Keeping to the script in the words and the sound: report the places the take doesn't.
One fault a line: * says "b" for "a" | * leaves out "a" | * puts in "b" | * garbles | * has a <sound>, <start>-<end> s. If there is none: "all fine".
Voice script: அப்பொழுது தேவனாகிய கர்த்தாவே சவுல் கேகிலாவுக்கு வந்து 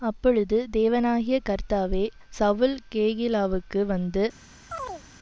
* has a chirp, 4.7-5.0 s